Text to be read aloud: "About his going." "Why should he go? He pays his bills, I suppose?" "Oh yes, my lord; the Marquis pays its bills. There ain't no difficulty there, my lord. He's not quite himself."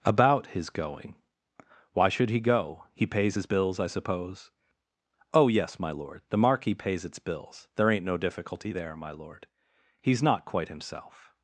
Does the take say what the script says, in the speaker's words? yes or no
yes